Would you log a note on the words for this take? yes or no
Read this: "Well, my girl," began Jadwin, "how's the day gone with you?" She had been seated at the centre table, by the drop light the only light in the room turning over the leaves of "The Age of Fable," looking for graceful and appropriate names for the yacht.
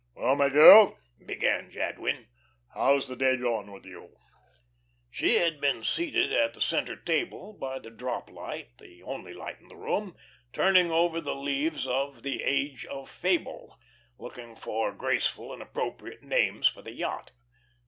no